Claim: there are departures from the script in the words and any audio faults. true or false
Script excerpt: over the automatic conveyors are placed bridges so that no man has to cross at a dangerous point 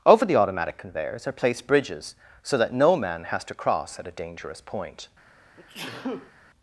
true